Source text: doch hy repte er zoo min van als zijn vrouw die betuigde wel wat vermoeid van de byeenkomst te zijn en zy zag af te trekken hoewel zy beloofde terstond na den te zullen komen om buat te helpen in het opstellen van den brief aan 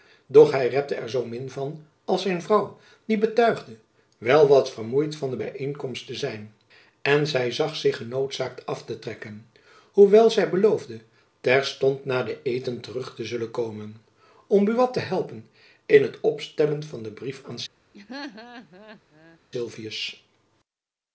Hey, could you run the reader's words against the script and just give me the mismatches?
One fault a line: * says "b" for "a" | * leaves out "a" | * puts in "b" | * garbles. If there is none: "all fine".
* puts in "zich genoodzaakt"
* puts in "eten terug"